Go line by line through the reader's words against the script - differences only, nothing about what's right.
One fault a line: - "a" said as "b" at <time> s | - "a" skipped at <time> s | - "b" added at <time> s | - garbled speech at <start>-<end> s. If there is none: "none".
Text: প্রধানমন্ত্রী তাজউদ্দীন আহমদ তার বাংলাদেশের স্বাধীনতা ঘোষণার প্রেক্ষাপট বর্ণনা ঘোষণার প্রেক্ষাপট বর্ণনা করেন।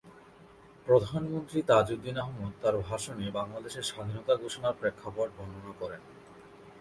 - "ভাষণে" added at 2.9 s
- "ঘোষণার প্রেক্ষাপট বর্ণনা" skipped at 5.7 s